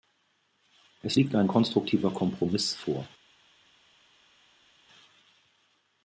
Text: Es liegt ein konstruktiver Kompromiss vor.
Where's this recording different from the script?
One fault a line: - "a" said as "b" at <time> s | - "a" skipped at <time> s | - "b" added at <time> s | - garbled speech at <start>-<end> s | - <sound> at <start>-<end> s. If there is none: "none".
none